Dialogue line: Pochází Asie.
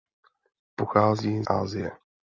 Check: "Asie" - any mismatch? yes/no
no